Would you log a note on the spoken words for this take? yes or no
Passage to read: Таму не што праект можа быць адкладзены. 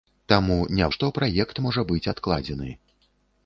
no